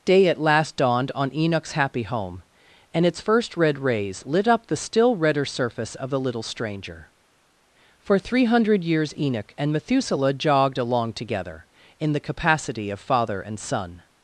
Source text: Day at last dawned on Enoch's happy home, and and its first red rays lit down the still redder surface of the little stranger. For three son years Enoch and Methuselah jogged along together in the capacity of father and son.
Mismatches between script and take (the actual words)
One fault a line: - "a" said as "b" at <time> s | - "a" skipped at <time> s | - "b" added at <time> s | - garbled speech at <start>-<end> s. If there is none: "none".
- "and" skipped at 3.0 s
- "down" said as "up" at 4.5 s
- "son" said as "hundred" at 8.4 s